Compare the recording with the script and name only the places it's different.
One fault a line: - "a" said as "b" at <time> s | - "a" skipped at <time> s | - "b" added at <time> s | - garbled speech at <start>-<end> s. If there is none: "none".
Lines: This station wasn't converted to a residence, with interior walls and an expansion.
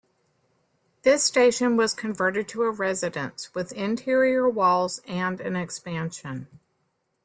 - "wasn't" said as "was" at 1.7 s